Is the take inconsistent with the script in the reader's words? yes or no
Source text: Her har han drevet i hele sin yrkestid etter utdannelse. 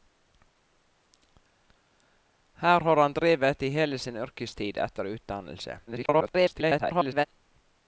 yes